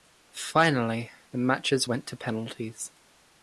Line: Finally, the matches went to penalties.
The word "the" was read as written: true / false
true